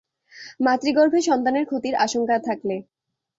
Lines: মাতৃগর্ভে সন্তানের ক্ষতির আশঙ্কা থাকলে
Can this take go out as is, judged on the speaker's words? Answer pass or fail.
pass